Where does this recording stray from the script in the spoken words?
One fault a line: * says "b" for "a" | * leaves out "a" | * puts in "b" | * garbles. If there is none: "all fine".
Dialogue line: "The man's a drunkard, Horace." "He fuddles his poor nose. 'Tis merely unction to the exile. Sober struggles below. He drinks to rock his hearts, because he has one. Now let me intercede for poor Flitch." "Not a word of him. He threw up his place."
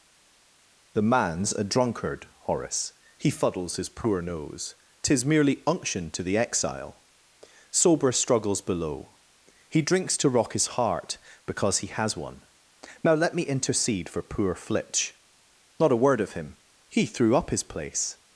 * says "heart" for "hearts"